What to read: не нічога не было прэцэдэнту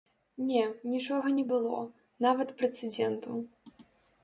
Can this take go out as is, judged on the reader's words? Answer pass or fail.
fail